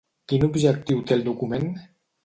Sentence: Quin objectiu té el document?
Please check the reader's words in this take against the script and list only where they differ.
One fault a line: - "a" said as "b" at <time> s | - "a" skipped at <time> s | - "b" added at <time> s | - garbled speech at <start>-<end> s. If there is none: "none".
none